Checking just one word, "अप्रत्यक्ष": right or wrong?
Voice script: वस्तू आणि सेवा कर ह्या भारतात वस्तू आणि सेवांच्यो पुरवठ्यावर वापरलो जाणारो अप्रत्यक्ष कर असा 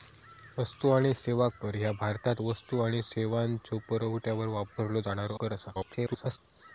wrong